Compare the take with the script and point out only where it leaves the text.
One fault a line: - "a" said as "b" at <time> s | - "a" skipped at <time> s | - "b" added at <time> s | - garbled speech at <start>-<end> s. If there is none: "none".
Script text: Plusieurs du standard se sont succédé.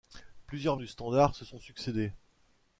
none